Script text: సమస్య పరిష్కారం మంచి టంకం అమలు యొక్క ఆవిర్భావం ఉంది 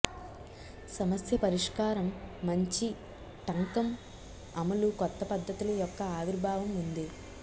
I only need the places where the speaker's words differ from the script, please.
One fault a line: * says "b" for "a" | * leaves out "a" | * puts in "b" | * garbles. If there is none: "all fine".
* puts in "కొత్త పద్ధతుల"